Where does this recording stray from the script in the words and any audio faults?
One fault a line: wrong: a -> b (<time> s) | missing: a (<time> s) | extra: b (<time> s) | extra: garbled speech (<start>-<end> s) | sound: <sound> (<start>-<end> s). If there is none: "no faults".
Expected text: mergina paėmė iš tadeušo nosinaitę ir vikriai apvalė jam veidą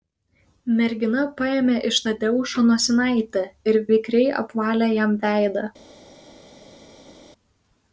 no faults